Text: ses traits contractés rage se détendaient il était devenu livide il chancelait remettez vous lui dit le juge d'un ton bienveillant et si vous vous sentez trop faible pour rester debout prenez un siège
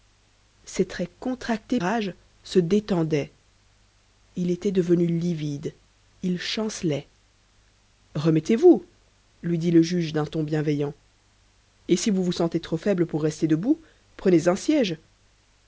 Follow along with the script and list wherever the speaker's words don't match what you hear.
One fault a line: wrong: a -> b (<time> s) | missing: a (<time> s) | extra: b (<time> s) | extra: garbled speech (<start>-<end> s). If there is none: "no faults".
no faults